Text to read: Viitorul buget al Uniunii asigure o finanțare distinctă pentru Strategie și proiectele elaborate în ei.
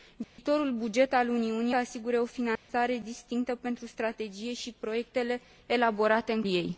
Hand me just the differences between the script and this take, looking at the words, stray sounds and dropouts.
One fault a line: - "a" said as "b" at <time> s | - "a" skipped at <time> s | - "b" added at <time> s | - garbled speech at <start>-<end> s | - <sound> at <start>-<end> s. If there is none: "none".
- dropout at 0.2-0.4 s
- dropout at 2.6-2.7 s